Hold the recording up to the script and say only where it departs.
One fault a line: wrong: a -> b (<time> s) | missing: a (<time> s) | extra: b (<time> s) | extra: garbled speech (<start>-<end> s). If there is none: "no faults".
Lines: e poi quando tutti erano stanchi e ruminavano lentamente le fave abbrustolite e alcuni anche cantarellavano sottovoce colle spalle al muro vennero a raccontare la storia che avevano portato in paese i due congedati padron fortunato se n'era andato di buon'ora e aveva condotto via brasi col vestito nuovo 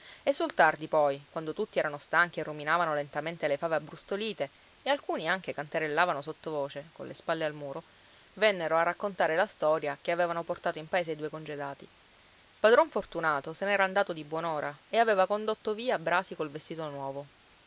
extra: sul tardi (0.3 s)